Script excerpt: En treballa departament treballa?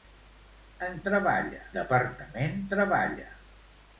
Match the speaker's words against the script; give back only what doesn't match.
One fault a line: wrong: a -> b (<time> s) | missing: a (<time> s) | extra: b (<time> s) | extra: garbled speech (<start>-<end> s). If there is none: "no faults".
no faults